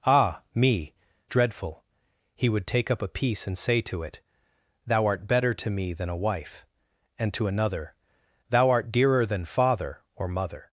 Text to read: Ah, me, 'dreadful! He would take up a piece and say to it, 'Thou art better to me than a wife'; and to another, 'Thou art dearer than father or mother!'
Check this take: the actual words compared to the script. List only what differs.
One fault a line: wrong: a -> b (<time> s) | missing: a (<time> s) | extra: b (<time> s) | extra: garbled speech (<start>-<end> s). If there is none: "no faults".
no faults